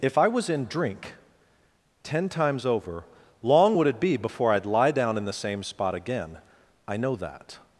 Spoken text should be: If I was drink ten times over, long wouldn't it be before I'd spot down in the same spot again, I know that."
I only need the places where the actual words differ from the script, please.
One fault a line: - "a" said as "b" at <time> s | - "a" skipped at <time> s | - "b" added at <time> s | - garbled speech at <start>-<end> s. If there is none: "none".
- "in" added at 0.5 s
- "wouldn't" said as "would" at 3.8 s
- "spot" said as "lie" at 4.7 s